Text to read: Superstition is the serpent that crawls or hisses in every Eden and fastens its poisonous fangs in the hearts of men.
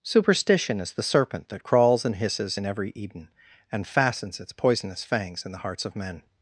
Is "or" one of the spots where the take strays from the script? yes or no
yes